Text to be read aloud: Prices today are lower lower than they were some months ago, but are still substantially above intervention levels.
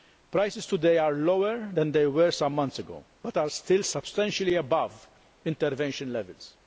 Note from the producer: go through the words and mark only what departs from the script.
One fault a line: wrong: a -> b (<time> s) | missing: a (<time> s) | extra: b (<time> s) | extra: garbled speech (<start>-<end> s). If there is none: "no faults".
missing: lower (1.7 s)